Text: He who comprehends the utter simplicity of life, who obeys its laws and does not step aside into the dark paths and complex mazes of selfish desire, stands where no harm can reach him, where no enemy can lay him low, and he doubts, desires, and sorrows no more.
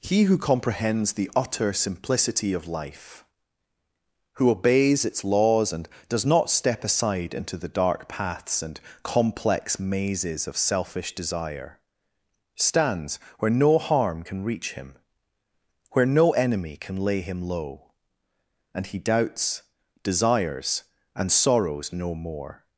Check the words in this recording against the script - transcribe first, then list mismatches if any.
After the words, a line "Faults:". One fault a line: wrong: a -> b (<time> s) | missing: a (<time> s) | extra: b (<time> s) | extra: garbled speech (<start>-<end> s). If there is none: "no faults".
He who comprehends the utter simplicity of life, who obeys its laws and does not step aside into the dark paths and complex mazes of selfish desire, stands where no harm can reach him, where no enemy can lay him low, and he doubts, desires, and sorrows no more.
Faults:
no faults